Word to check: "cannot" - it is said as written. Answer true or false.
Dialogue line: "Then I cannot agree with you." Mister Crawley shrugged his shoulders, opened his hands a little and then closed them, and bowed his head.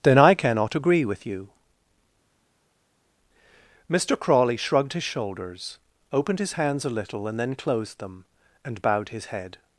true